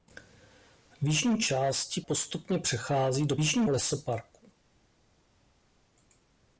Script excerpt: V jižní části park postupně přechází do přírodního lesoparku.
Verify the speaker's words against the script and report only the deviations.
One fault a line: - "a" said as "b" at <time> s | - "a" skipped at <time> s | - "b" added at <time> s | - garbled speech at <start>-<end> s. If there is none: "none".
- "park" skipped at 2.0 s
- "přírodního" said as "jižní" at 3.4 s